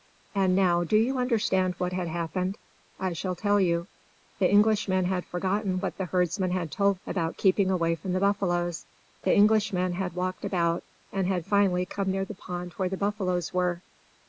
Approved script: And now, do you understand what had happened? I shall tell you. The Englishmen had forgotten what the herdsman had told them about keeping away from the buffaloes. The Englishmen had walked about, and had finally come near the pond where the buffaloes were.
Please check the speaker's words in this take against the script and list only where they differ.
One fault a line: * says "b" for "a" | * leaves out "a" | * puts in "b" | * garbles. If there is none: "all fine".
* leaves out "them"